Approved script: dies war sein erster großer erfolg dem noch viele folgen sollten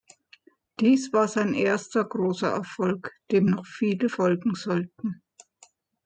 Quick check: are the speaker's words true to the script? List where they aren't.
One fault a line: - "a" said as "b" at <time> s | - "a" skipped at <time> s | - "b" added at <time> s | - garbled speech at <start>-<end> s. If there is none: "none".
none